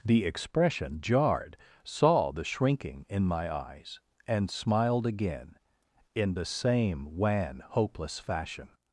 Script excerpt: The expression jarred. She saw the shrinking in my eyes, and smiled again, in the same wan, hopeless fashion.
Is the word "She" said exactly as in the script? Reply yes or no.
no